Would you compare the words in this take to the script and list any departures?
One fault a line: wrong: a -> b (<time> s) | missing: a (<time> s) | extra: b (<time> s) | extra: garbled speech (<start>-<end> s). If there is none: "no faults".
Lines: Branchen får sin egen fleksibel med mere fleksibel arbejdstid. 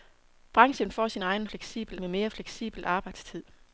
no faults